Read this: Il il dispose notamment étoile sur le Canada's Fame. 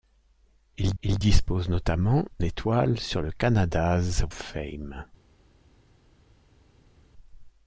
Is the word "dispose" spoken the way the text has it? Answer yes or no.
yes